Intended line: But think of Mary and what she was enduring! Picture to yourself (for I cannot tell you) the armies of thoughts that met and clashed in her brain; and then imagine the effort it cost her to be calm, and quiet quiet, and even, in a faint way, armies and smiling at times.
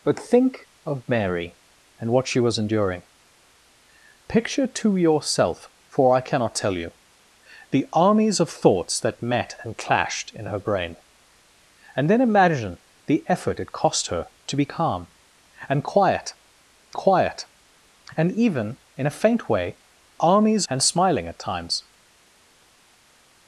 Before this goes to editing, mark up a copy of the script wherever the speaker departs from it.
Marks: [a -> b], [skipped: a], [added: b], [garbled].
But think of Mary and what she was enduring! Picture to yourself (for I cannot tell you) the armies of thoughts that met and clashed in her brain; and then imagine the effort it cost her to be calm, and quiet quiet, and even, in a faint way, armies and smiling at times.